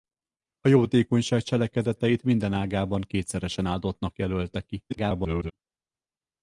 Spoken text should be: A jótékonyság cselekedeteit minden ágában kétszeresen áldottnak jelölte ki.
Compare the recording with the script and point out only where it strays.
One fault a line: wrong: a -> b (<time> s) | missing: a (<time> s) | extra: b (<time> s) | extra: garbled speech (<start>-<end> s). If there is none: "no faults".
extra: garbled speech (4.9-5.5 s)